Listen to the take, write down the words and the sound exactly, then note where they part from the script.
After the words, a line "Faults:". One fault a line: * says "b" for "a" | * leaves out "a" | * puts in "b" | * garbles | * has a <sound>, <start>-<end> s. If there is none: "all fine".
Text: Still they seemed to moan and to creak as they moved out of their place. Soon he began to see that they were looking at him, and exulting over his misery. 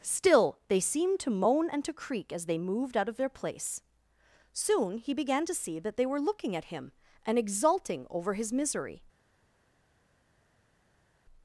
Still they seemed to moan and to creak as they moved out of their place. Soon he began to see that they were looking at him, and exulting over his misery.
Faults:
all fine